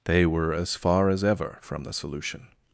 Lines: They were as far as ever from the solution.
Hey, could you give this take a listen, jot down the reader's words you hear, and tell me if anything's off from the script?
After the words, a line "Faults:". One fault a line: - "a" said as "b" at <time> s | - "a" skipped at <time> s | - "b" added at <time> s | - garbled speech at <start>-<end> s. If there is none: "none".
They were as far as ever from the solution.
Faults:
none